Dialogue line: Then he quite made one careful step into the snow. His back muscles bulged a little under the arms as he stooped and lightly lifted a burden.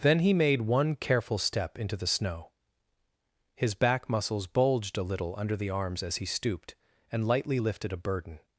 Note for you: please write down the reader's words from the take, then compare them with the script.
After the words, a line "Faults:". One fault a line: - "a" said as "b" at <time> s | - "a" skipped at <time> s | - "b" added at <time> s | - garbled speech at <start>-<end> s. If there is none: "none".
Then he made one careful step into the snow. His back muscles bulged a little under the arms as he stooped and lightly lifted a burden.
Faults:
- "quite" skipped at 0.3 s